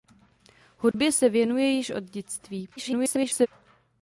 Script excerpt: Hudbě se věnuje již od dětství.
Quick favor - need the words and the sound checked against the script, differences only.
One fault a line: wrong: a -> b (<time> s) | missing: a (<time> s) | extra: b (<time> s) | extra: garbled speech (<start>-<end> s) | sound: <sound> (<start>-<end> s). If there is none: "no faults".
sound: dropout (0.9-0.9 s)
extra: garbled speech (2.8-3.5 s)